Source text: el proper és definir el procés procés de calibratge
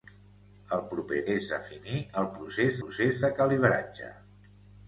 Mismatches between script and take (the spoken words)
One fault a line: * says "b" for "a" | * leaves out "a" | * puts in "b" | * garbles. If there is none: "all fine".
all fine